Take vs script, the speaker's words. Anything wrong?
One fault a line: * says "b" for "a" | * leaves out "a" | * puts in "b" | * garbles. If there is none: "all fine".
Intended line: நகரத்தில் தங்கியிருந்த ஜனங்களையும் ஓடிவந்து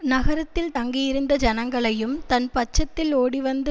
* puts in "தன் பட்சத்தில்"